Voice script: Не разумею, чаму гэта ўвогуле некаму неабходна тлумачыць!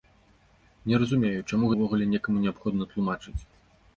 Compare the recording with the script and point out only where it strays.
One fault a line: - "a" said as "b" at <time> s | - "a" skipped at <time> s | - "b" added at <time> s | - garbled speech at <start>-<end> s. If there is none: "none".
- "гэта" skipped at 1.7 s